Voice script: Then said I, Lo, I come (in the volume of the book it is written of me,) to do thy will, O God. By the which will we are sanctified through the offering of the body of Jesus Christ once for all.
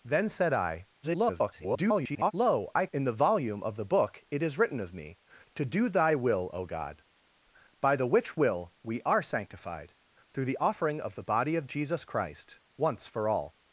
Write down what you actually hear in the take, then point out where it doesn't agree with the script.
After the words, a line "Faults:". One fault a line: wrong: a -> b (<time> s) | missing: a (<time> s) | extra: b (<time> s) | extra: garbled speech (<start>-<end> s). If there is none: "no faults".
Then said I, [garbled] Lo, I (in the volume of the book it is written of me,) to do thy will, O God. By the which will we are sanctified through the offering of the body of Jesus Christ once for all.
Faults:
extra: garbled speech (1.0-2.3 s)
missing: come (2.9 s)